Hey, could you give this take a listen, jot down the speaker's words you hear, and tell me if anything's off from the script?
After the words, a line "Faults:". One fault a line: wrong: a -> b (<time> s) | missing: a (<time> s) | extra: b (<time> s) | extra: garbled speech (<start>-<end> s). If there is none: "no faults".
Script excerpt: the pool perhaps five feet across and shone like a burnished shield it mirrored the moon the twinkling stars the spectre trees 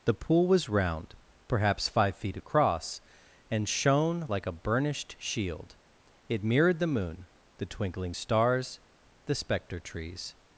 the pool was round perhaps five feet across and shone like a burnished shield it mirrored the moon the twinkling stars the spectre trees
Faults:
extra: was round (0.5 s)